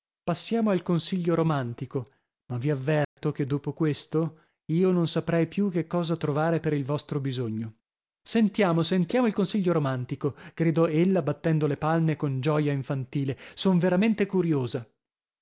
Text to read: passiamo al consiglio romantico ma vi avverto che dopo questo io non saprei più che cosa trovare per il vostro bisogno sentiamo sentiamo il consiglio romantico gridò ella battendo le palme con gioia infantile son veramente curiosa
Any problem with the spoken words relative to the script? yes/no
no